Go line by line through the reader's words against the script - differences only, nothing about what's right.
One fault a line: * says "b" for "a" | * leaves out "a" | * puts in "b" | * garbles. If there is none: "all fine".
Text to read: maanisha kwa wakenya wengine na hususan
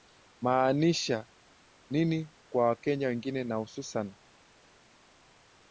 * puts in "nini"